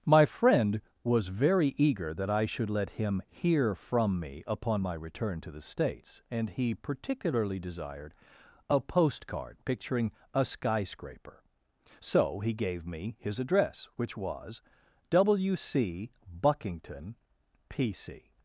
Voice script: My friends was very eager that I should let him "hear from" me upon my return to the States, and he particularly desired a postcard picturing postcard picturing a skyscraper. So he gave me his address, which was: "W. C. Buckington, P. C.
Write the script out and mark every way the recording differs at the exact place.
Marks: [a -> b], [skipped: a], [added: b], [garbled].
My [friends -> friend] was very eager that I should let him "hear from" me upon my return to the States, and he particularly desired a postcard picturing [skipped: postcard picturing] a skyscraper. So he gave me his address, which was: "W. C. Buckington, P. C.